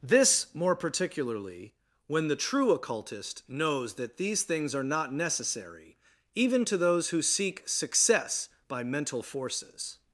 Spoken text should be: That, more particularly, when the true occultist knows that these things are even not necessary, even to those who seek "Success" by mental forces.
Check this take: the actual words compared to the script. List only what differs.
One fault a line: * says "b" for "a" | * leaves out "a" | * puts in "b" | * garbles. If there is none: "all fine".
* says "This" for "That"
* leaves out "even"